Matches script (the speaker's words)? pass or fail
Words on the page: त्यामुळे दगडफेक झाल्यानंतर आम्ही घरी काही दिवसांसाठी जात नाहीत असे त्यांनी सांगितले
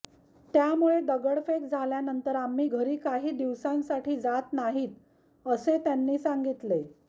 pass